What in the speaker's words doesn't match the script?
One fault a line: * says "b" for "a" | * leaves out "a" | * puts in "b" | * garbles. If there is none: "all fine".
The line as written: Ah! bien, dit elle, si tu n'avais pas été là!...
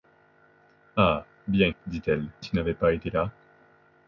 * leaves out "si"